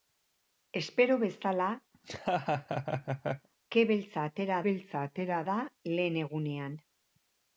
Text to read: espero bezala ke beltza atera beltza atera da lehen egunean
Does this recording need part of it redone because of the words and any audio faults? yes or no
yes